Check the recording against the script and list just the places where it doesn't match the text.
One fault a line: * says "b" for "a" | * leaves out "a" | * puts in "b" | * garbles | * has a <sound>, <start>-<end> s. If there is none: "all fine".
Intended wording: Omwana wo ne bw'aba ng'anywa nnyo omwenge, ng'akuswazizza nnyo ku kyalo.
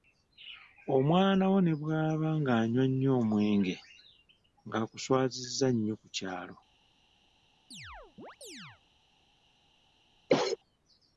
* has a chirp, 7.7-8.8 s
* has a cough, 10.3-10.6 s